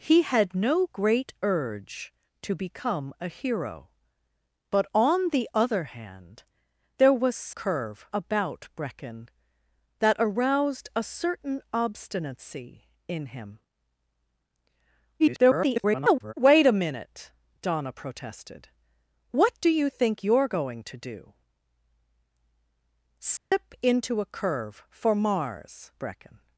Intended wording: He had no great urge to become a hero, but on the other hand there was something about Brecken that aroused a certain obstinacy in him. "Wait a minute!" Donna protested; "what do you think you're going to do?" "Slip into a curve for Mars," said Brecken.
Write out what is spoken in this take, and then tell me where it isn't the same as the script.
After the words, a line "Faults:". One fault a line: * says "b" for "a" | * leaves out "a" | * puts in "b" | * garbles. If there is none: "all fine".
He had no great urge to become a hero, but on the other hand there was curve about Brecken that aroused a certain obstinacy in him. [garbled] "Wait a minute!" Donna protested; "what do you think you're going to do?" "Slip into a curve for Mars," Brecken.
Faults:
* says "curve" for "something"
* garbles
* leaves out "said"